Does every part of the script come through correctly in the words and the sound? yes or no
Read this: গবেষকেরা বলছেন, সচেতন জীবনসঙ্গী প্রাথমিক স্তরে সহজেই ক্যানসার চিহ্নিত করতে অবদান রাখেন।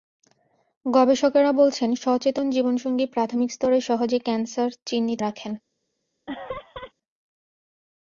no